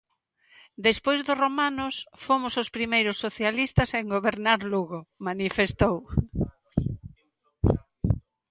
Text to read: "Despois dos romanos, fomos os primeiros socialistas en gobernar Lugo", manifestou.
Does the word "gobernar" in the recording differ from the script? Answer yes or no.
no